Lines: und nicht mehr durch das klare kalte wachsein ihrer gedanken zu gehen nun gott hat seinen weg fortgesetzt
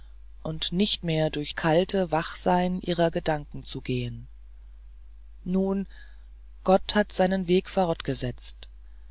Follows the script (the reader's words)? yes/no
no